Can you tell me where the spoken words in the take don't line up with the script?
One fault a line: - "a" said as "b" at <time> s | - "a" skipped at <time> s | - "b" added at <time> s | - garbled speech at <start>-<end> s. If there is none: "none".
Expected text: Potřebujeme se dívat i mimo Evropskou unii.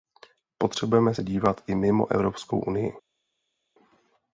none